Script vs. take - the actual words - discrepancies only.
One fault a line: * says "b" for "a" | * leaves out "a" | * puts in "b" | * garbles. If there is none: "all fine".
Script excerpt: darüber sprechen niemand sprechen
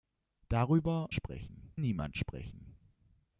all fine